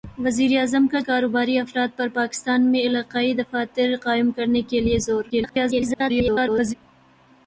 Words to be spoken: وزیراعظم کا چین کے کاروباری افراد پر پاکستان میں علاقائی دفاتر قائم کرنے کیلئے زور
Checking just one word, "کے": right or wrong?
wrong